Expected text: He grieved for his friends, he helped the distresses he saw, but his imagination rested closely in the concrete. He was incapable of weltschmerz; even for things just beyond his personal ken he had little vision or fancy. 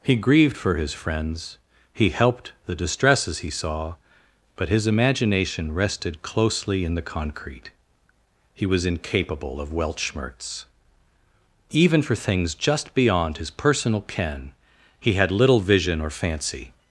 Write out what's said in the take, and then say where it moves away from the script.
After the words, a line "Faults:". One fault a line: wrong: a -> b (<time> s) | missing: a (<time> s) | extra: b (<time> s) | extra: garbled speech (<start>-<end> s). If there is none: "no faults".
He grieved for his friends, he helped the distresses he saw, but his imagination rested closely in the concrete. He was incapable of weltschmerz; even for things just beyond his personal ken he had little vision or fancy.
Faults:
no faults